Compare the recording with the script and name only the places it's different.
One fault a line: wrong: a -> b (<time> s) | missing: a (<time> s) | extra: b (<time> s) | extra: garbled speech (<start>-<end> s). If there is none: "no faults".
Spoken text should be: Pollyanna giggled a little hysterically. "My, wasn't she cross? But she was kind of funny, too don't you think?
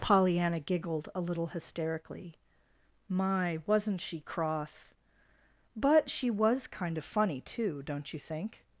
no faults